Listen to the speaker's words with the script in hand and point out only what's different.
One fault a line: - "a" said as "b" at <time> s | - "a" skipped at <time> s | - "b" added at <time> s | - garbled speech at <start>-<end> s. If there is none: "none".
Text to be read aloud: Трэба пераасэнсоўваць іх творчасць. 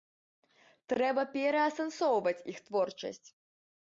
none